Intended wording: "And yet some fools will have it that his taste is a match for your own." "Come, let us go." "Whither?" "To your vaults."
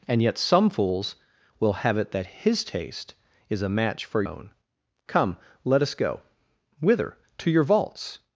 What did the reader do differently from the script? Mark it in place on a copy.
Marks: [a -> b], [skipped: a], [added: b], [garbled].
"And yet some fools will have it that his taste is a match for [skipped: your] own." "Come, let us go." "Whither?" "To your vaults."